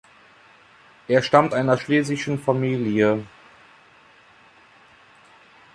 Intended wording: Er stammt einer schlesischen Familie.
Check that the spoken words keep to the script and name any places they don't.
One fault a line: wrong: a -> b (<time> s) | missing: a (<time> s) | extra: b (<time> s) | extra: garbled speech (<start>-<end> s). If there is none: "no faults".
no faults